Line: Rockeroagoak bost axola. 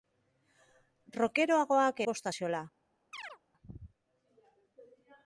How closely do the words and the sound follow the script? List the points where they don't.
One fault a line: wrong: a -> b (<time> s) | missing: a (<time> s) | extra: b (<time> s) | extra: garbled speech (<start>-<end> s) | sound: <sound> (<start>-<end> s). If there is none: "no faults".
sound: chirp (3.1-3.4 s)